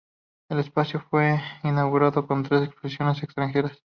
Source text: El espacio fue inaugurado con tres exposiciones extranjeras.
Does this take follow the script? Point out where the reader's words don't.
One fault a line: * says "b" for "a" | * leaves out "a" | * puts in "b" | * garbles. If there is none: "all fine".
all fine